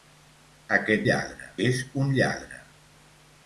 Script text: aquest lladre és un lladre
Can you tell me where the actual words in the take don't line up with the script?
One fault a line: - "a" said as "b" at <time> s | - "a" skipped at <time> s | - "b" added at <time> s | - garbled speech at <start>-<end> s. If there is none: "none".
none